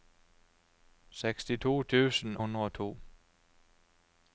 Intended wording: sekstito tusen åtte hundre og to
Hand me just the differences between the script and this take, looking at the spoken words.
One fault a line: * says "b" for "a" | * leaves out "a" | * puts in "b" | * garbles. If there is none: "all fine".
* leaves out "åtte"